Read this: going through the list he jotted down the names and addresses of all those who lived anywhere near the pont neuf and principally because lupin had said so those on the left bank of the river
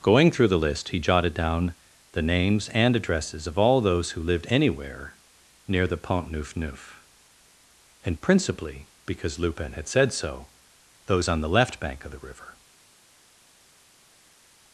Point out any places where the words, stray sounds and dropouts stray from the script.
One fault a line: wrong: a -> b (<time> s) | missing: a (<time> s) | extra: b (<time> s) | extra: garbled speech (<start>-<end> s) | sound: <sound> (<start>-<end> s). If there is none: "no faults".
extra: neuf (6.6 s)